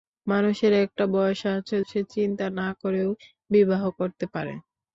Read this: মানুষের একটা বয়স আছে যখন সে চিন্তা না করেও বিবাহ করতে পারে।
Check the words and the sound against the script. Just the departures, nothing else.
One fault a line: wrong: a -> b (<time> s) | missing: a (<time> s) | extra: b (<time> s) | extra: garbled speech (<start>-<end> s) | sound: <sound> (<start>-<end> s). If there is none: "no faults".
missing: যখন (1.8 s)